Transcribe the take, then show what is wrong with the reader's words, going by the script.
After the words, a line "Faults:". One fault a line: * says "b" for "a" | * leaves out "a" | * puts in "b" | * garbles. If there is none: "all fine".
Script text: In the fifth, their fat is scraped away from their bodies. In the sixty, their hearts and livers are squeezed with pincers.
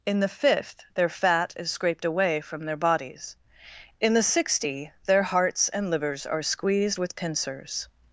In the fifth, their fat is scraped away from their bodies. In the sixty, their hearts and livers are squeezed with pincers.
Faults:
all fine